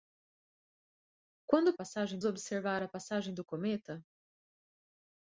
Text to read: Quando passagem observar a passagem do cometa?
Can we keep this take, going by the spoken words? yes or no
yes